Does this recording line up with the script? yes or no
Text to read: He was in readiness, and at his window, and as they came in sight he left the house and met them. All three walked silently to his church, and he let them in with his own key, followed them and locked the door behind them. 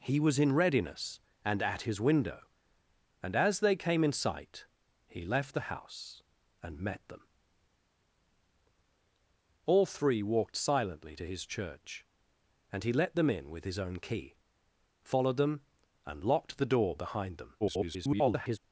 no